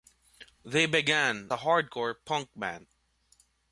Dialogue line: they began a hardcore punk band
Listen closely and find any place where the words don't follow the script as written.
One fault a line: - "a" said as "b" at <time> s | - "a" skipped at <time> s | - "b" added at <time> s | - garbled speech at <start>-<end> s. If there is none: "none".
none